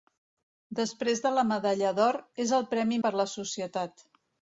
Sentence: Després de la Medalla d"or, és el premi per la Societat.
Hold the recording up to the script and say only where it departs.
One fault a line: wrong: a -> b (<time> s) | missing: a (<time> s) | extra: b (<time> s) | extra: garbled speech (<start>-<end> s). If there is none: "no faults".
no faults